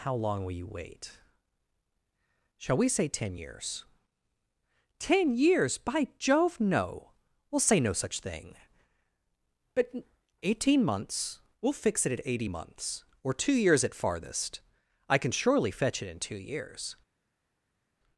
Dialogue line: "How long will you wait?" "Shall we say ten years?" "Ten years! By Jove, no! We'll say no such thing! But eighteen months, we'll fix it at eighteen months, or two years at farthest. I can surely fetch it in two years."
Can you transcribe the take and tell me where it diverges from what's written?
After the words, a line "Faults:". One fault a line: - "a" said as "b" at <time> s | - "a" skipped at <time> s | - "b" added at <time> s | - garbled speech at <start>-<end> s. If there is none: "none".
"How long will you wait?" "Shall we say ten years?" "Ten years! By Jove, no! We'll say no such thing! But eighteen months, we'll fix it at eighty months, or two years at farthest. I can surely fetch it in two years."
Faults:
- "eighteen" said as "eighty" at 12.3 s